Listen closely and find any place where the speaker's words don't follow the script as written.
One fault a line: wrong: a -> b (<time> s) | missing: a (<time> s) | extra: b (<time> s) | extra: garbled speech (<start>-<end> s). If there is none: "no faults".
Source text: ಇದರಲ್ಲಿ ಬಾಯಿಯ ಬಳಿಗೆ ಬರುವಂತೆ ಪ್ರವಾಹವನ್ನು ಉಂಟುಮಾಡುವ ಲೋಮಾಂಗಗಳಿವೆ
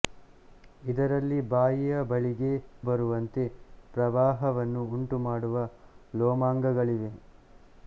no faults